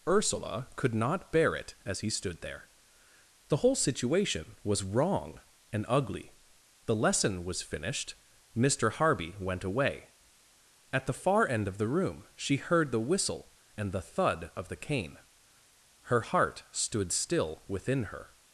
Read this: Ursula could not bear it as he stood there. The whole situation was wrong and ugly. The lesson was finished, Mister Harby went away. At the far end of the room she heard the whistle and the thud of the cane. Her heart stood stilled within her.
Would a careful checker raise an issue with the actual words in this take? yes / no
yes